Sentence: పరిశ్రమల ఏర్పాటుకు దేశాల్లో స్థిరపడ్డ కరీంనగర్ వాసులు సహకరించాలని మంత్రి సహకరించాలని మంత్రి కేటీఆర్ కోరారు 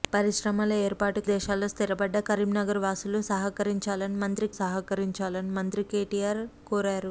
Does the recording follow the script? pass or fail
pass